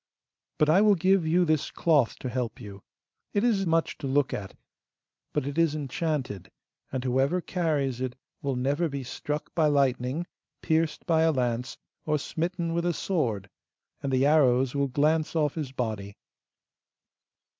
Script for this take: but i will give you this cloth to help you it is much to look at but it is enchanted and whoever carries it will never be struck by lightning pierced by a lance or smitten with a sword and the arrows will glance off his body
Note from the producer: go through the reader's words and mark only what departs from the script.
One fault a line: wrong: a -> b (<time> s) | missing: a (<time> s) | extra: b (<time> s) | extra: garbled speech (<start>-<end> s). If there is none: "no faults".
no faults